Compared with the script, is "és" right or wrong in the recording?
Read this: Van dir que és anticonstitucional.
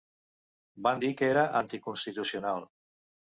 wrong